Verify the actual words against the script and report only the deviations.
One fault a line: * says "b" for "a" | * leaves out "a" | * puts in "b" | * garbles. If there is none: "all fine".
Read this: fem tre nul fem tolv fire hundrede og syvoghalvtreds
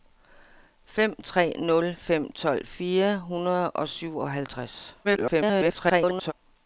* garbles